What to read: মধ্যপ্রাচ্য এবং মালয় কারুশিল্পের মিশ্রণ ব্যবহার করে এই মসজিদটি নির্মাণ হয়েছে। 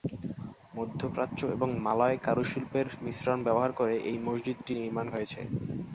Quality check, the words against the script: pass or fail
pass